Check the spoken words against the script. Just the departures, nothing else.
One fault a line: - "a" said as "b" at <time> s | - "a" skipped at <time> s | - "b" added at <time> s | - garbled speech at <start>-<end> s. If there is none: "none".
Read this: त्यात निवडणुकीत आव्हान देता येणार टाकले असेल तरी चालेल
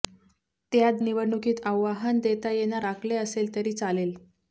none